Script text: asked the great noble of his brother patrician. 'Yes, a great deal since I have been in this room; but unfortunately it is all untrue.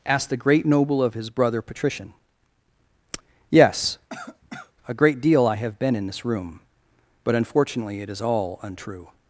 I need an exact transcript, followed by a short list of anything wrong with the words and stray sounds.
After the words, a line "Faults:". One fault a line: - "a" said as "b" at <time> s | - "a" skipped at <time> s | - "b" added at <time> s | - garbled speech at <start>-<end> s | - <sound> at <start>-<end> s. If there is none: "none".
asked the great noble of his brother patrician. 'Yes, a great deal I have been in this room; but unfortunately it is all untrue.
Faults:
- cough at 4.1-4.7 s
- "since" skipped at 5.5 s